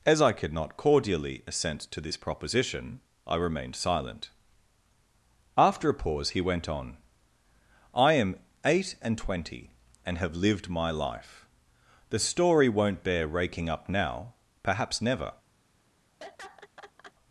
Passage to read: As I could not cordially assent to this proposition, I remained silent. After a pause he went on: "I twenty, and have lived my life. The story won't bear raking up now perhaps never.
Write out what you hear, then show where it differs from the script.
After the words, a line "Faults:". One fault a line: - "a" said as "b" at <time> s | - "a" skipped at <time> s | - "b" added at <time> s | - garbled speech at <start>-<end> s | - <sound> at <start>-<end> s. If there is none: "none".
As I could not cordially assent to this proposition, I remained silent. After a pause he went on: "I am eight and twenty, and have lived my life. The story won't bear raking up now perhaps never.
Faults:
- "am eight and" added at 8.1 s
- laugh at 16.2-17.1 s